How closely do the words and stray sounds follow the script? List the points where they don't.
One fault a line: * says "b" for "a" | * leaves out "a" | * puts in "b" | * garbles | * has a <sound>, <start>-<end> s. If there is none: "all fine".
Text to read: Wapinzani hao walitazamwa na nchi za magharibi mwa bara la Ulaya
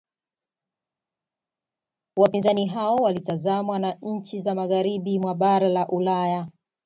all fine